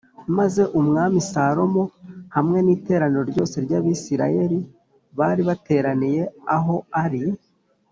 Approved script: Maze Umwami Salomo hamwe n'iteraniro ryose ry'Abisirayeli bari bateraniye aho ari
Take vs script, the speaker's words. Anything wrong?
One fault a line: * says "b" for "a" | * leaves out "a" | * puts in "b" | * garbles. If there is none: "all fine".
all fine